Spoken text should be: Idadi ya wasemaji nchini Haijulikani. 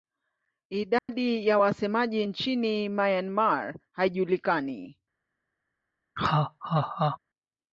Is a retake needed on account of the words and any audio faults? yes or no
yes